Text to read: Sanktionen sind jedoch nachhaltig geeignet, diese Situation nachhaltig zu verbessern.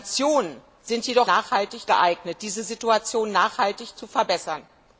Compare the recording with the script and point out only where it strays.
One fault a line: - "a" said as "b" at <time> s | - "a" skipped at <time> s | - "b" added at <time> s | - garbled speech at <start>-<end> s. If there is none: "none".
none